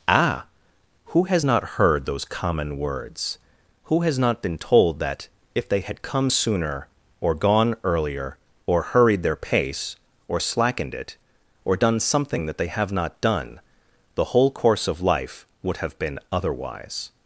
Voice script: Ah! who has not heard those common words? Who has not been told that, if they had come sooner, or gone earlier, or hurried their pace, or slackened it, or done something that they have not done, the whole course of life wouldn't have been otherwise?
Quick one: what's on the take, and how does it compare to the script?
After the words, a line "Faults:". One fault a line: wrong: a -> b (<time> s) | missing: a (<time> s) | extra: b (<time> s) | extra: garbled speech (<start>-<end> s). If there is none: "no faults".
Ah! who has not heard those common words? Who has not been told that, if they had come sooner, or gone earlier, or hurried their pace, or slackened it, or done something that they have not done, the whole course of life would have been otherwise?
Faults:
wrong: wouldn't -> would (15.6 s)